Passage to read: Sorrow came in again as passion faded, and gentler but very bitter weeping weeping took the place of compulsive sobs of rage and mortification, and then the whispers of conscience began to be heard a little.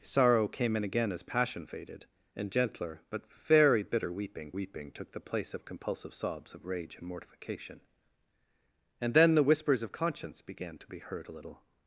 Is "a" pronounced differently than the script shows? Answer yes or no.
no